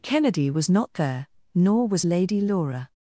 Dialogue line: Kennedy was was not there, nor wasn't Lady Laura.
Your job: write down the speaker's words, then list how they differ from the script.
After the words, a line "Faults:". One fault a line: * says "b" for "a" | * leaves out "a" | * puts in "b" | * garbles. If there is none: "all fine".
Kennedy was not there, nor was Lady Laura.
Faults:
* leaves out "was"
* says "was" for "wasn't"